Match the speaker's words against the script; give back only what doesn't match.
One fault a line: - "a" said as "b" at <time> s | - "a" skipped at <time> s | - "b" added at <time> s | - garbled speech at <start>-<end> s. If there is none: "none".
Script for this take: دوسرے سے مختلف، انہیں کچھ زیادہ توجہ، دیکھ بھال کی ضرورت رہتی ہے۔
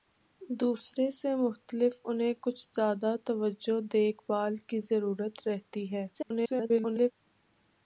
- garbled speech at 6.1-7.1 s